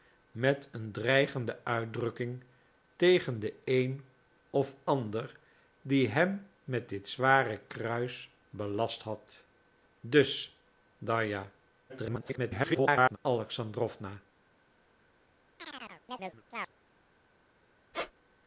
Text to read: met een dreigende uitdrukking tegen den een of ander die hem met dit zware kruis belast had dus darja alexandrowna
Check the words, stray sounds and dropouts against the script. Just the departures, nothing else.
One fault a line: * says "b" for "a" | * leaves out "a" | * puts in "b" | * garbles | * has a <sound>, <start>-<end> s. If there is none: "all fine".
* garbles
* has a chirp, 15.6-16.7 s
* has a squeak, 17.9-18.1 s